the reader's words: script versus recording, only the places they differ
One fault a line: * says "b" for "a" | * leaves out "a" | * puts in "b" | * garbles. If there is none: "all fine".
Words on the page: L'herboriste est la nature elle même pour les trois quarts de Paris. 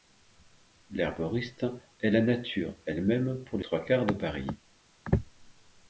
* leaves out "les"